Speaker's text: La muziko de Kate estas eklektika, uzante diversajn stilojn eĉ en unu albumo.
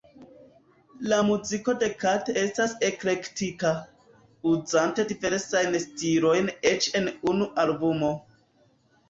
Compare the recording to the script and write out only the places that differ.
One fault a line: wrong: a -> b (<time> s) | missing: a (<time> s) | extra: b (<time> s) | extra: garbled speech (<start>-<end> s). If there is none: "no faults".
no faults